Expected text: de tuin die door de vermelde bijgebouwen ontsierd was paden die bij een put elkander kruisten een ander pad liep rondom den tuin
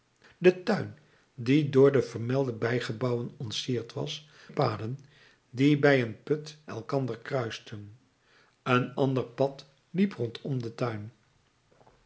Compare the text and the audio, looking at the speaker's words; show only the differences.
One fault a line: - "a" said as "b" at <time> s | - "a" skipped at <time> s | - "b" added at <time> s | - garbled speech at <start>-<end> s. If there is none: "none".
none